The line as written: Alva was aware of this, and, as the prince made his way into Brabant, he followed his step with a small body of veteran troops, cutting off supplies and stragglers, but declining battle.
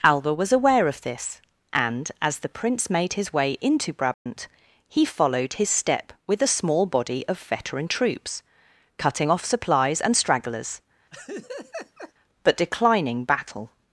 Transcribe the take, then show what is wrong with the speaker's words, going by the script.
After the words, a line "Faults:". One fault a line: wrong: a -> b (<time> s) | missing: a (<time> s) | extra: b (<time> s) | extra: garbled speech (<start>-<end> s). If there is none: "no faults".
Alva was aware of this, and, as the prince made his way into Brabant, he followed his step with a small body of veteran troops, cutting off supplies and stragglers, but declining battle.
Faults:
no faults